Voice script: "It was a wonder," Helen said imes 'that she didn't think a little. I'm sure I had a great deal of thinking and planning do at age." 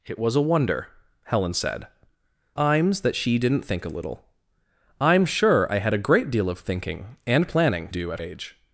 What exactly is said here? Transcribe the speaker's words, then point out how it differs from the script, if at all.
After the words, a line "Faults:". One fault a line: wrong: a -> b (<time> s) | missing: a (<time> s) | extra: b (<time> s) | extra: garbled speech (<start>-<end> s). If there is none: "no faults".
"It was a wonder," Helen said imes 'that she didn't think a little. I'm sure I had a great deal of thinking and planning do at age."
Faults:
no faults